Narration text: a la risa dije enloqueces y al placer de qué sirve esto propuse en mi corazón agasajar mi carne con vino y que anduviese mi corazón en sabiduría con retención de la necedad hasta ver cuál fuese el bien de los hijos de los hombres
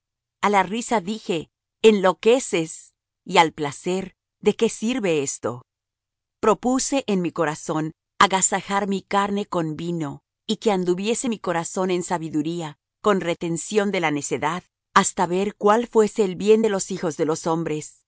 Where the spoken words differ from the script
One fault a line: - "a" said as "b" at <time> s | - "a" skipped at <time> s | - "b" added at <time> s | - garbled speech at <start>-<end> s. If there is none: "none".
none